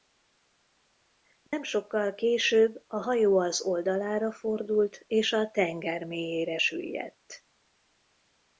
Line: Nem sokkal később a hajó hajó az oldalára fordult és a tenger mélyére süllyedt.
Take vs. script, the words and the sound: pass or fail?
fail